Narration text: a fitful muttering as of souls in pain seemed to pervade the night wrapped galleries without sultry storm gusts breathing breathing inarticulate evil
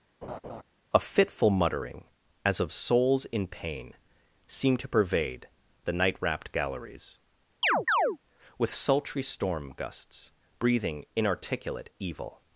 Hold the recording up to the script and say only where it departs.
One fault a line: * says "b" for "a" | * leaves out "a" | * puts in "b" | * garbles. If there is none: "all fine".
* says "with" for "without"
* leaves out "breathing"